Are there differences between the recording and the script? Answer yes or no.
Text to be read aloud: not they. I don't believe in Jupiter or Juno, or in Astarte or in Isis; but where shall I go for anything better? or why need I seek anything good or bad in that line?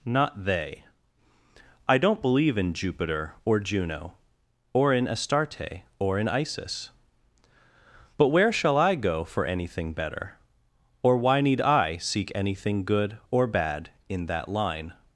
no